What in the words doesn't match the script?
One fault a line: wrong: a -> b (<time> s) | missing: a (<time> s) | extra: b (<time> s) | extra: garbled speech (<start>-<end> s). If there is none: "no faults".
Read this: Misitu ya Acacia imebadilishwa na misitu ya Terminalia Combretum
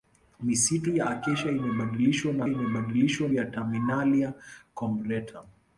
wrong: misitu -> imebadilishwa (2.5 s)